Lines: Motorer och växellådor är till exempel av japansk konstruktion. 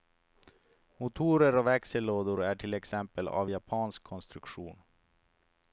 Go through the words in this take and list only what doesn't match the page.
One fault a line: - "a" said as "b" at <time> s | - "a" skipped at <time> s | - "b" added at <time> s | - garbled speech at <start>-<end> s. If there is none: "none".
none